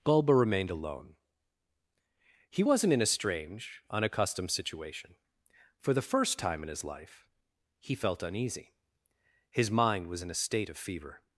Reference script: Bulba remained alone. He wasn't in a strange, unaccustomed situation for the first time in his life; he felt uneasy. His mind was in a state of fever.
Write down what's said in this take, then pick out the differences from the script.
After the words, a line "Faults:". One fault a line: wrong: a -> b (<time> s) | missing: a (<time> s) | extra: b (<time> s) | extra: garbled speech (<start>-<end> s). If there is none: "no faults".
Bulba remained alone. He wasn't in a strange, unaccustomed situation for the first time in his life; he felt uneasy. His mind was in a state of fever.
Faults:
no faults